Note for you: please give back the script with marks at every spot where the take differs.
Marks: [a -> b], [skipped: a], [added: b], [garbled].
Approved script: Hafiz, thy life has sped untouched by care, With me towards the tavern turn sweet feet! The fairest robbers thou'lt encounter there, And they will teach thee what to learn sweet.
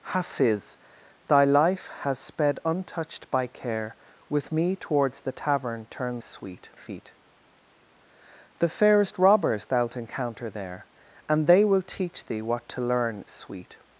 Hafiz, thy life has sped untouched by care, With me towards the tavern turn sweet feet! The fairest robbers thou'lt encounter there, And they will teach thee what to learn sweet.